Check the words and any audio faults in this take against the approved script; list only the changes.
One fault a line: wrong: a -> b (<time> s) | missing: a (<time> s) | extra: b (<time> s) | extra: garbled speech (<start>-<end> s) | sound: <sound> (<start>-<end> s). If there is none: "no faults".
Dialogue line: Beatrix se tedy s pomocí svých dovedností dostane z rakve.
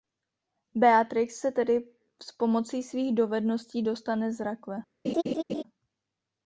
sound: laugh (5.0-5.6 s)